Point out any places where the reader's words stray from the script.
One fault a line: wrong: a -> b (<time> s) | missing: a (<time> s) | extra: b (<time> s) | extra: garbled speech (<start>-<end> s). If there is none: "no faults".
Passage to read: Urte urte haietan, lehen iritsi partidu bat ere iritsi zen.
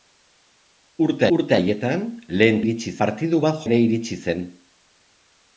no faults